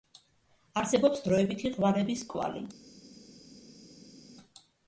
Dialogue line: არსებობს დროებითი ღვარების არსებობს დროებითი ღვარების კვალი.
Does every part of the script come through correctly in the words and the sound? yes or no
no